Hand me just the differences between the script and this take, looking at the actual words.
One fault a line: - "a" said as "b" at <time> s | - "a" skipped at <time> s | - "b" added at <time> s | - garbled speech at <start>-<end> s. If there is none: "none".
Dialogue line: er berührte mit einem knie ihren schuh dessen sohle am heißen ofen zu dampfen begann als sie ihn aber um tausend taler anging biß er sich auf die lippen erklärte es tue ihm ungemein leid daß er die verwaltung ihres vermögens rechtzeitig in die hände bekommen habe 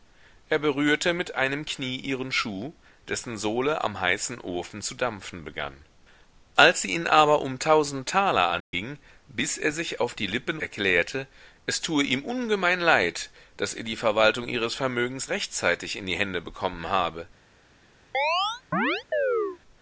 none